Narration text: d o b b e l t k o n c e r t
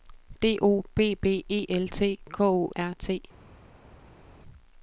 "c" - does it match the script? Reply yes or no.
no